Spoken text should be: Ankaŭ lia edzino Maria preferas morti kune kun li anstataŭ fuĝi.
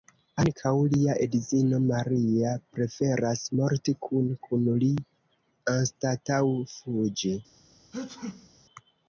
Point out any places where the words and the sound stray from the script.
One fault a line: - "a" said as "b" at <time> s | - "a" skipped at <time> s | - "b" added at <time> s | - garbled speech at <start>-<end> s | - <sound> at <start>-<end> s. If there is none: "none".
- sneeze at 7.9-8.5 s